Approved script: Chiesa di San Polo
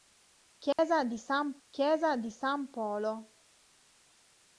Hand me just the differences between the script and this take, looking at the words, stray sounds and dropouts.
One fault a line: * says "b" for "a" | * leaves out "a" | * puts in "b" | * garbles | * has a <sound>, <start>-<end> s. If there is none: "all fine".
* has a dropout, 0.7-0.8 s
* puts in "chiesa di San"